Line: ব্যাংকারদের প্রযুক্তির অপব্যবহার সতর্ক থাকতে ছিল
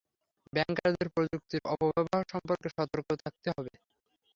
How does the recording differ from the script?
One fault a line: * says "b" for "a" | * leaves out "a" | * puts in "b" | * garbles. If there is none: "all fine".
* puts in "সম্পর্কে"
* says "হবে" for "ছিল"